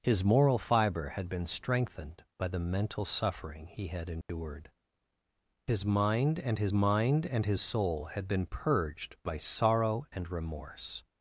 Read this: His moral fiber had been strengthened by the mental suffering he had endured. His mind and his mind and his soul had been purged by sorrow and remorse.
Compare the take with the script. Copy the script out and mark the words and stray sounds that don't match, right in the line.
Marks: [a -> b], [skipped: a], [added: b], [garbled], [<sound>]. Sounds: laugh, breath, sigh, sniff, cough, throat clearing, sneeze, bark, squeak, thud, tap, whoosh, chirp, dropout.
His moral fiber had been strengthened by the mental suffering he had endured. [dropout] His mind and his mind and his soul had been purged by sorrow and remorse.